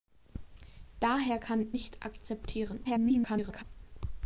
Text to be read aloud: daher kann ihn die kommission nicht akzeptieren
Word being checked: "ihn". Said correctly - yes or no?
no